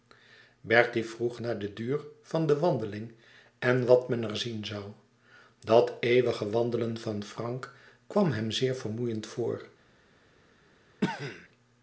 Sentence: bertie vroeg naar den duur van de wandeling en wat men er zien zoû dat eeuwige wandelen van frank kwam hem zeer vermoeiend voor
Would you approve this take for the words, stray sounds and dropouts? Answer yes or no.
no